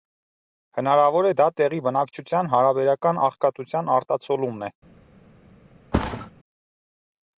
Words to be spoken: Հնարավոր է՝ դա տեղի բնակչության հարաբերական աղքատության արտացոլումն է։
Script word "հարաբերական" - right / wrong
right